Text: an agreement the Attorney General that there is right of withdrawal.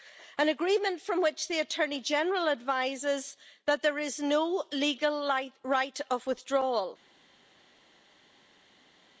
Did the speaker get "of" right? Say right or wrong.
right